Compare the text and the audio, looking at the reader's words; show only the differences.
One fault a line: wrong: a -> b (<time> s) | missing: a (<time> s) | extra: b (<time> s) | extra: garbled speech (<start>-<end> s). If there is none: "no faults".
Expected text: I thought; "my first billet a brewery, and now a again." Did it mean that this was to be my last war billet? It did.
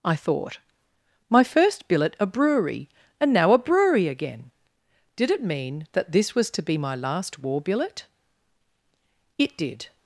extra: brewery (3.6 s)